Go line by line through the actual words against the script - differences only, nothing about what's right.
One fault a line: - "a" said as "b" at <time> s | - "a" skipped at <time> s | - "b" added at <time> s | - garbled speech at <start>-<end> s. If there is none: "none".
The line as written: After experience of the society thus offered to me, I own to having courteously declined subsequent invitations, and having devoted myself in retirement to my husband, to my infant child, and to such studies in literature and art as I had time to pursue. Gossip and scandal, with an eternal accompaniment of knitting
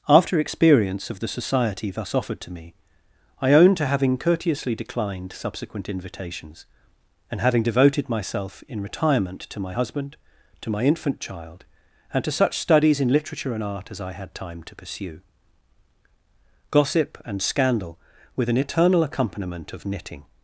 none